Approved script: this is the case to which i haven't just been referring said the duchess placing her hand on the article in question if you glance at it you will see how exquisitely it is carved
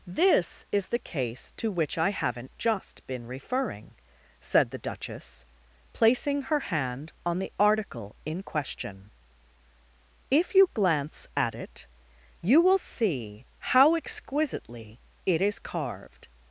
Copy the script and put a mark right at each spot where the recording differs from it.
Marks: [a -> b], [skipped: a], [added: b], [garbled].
this is the case to which i haven't just been referring said the duchess placing her hand on the article in question if you glance at it you will see how exquisitely it is carved